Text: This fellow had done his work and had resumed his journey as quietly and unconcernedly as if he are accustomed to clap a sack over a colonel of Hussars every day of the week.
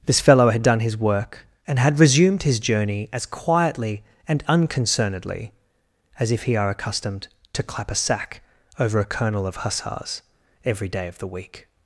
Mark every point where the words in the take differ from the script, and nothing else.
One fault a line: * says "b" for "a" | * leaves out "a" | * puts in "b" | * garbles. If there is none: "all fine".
all fine